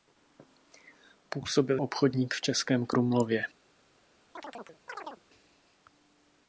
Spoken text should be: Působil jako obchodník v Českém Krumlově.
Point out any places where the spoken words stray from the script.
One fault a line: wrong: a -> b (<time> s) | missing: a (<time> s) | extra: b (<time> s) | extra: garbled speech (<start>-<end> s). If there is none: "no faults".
missing: jako (1.8 s)